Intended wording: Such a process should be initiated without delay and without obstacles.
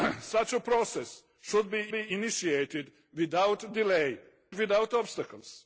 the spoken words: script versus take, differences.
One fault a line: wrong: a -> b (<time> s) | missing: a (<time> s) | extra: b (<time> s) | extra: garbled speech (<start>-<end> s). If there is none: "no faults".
extra: be (1.9 s)
missing: and (4.2 s)